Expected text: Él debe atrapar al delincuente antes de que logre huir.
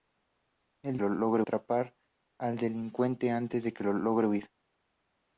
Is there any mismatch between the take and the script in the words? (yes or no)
yes